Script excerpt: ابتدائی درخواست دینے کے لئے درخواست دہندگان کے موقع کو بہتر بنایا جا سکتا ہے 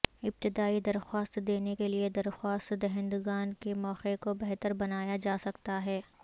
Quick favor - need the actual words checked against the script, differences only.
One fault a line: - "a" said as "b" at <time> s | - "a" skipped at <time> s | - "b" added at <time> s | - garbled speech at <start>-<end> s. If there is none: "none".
none